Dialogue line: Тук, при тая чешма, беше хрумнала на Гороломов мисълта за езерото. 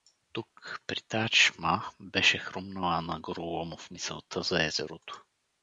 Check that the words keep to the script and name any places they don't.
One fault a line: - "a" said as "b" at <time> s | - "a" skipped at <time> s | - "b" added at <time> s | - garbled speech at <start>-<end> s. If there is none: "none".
none